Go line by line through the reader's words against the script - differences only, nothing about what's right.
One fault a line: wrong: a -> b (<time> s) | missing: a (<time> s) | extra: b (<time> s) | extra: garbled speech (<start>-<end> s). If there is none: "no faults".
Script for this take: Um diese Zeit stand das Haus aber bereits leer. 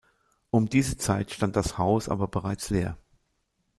no faults